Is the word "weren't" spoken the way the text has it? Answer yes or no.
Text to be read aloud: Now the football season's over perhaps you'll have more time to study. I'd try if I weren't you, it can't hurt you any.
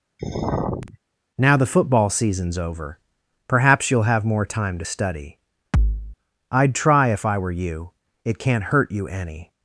no